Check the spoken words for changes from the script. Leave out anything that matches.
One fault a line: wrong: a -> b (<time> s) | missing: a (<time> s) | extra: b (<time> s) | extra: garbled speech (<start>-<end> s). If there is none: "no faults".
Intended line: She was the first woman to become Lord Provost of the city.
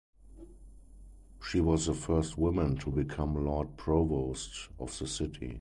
no faults